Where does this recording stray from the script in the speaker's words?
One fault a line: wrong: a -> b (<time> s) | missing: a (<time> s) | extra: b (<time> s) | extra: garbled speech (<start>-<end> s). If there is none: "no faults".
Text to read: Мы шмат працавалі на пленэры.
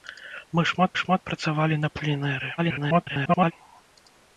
extra: шмат (1.0 s)
extra: garbled speech (2.6-3.5 s)